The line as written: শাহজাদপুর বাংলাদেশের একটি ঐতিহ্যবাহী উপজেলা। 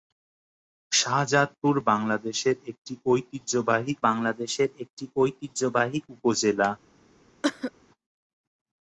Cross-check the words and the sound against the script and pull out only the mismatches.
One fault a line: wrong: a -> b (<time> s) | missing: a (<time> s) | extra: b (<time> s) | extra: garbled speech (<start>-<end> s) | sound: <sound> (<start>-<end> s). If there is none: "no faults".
extra: বাংলাদেশের একটি ঐতিহ্যবাহী (4.1 s)
sound: cough (7.4-7.7 s)